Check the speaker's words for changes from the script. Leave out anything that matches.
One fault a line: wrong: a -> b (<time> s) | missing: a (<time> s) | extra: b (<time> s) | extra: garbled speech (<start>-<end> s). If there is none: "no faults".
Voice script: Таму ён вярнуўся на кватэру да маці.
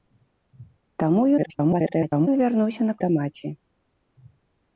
extra: garbled speech (1.4-2.3 s)
missing: кватэру (2.9 s)